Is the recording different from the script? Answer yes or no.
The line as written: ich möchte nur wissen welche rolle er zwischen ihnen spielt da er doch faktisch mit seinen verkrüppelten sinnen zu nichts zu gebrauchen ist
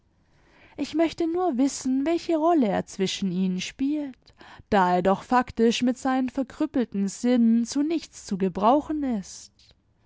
no